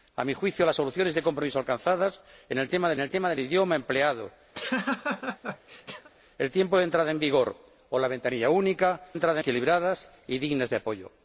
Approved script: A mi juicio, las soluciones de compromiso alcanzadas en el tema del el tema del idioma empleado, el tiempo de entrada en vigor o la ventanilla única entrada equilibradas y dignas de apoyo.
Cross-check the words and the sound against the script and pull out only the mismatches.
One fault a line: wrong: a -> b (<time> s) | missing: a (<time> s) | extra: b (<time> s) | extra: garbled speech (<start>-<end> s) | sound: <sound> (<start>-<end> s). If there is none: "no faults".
sound: laugh (4.5-6.1 s)